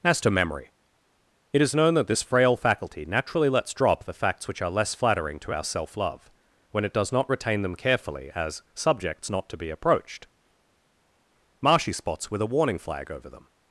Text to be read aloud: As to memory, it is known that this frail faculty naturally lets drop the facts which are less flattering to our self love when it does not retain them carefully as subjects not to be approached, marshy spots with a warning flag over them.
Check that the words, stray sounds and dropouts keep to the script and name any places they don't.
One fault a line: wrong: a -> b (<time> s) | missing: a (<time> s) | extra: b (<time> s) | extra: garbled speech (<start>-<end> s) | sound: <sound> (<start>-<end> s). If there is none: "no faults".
no faults